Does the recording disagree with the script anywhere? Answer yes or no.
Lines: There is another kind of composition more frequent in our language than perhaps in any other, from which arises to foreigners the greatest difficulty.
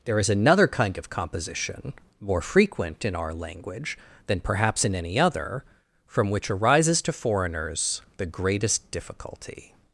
no